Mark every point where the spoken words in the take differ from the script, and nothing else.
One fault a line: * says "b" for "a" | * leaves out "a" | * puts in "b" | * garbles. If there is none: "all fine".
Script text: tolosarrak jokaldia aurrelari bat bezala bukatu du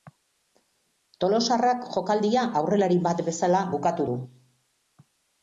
all fine